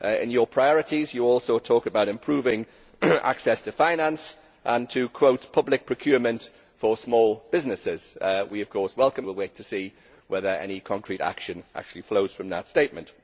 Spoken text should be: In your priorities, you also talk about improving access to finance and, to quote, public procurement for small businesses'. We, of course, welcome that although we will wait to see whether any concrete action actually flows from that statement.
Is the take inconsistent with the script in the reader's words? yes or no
yes